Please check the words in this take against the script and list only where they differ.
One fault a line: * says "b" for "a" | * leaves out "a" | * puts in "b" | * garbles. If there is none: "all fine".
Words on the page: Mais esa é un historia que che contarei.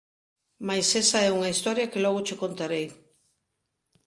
* says "unha" for "un"
* puts in "logo"